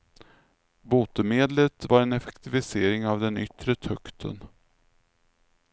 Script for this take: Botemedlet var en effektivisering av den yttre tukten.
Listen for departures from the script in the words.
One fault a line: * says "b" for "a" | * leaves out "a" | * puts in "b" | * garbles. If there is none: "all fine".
all fine